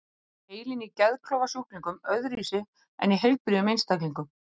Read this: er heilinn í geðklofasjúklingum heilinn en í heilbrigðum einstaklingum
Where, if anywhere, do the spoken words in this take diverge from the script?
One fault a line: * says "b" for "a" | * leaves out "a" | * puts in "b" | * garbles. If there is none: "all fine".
* says "öðruvísi" for "heilinn"